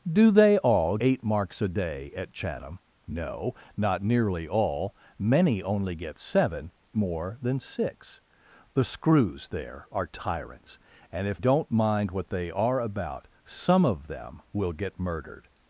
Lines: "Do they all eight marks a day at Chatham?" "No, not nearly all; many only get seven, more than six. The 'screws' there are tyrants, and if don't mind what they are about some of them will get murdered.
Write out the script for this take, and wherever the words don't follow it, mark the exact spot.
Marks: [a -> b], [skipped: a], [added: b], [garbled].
"Do they all eight marks a day at Chatham?" "No, not nearly all; many only get seven, more than six. The 'screws' there are tyrants, and if don't mind what they are about some of them will get murdered.